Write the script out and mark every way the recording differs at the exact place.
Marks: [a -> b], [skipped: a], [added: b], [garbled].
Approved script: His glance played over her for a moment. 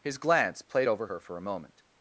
His glance played over her for a moment.